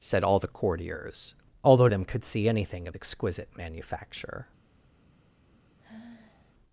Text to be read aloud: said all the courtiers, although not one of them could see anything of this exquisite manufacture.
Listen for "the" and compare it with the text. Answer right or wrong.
right